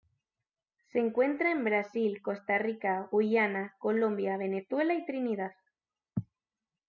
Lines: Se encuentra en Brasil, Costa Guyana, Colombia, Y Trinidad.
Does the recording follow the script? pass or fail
fail